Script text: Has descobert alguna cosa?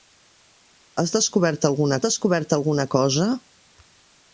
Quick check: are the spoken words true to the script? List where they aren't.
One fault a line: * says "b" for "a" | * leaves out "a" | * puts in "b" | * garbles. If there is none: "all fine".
* puts in "descobert alguna"